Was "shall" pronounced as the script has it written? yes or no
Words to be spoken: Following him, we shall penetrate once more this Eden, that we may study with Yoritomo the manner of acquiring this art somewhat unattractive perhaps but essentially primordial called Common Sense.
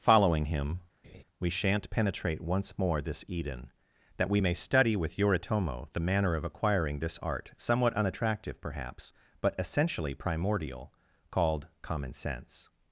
no